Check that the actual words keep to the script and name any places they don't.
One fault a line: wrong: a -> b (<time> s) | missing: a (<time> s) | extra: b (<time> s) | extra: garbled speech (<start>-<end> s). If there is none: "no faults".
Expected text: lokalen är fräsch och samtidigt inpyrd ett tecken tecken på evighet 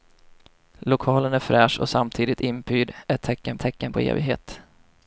no faults